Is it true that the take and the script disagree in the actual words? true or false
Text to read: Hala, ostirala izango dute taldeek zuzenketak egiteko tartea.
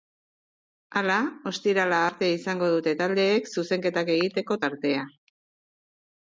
true